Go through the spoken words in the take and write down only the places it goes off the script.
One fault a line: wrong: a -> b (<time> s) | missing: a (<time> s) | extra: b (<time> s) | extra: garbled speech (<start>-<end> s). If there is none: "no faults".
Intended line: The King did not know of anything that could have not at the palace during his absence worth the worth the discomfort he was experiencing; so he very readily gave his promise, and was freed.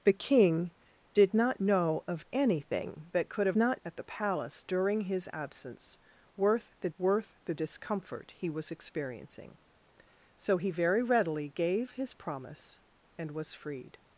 no faults